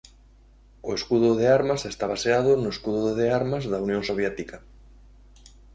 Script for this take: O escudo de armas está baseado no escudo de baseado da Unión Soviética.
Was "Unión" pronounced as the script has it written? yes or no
yes